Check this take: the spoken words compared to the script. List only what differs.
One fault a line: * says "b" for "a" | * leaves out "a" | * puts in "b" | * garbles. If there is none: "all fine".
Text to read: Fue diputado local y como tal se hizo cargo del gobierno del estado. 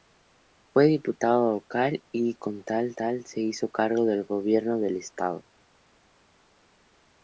* puts in "tal"